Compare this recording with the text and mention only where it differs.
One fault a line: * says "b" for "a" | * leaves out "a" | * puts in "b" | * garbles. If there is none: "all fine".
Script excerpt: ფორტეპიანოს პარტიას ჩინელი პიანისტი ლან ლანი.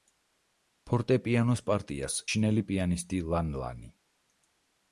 all fine